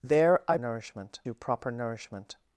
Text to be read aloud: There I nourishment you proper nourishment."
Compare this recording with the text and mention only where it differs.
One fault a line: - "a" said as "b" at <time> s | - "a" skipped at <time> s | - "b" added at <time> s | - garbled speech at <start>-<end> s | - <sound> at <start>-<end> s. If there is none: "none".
none